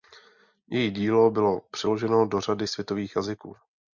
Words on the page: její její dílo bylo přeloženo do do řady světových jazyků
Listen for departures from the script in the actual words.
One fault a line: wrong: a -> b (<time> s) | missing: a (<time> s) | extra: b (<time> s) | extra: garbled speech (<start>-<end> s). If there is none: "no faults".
missing: její (0.9 s)
missing: do (2.4 s)